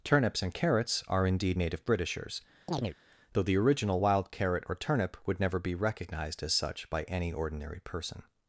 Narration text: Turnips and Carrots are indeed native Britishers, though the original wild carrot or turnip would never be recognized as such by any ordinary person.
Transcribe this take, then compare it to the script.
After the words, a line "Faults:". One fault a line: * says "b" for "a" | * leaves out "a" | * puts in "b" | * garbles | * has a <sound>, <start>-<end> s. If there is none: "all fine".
Turnips and Carrots are indeed native Britishers, though the original wild carrot or turnip would never be recognized as such by any ordinary person.
Faults:
* has a chirp, 2.7-3.0 s